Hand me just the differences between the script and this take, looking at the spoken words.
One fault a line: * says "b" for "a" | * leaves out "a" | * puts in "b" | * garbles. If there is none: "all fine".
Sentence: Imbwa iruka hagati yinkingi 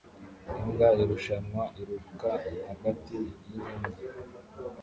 * puts in "irushanwa"